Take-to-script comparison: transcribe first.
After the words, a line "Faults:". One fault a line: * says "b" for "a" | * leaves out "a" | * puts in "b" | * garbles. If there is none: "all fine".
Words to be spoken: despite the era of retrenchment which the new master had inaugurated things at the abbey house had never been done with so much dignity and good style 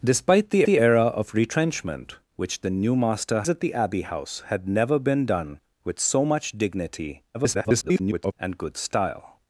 despite the the era of retrenchment which the new master at the abbey house had never been done with so much dignity [garbled] and good style
Faults:
* puts in "the"
* leaves out "had inaugurated things"
* garbles